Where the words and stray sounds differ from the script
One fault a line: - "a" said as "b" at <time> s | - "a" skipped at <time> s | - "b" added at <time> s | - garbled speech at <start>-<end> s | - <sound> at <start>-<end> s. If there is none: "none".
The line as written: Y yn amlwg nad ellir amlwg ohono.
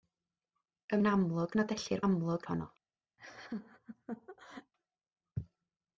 - laugh at 3.2-4.7 s